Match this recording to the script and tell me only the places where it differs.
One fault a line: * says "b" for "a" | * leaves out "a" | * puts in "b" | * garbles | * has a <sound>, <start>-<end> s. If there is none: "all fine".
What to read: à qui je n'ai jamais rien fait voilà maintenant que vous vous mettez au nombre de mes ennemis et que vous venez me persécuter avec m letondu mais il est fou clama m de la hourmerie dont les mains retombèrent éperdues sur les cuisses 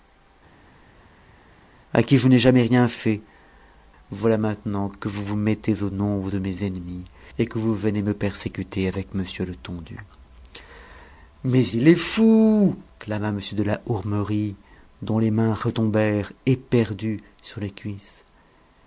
all fine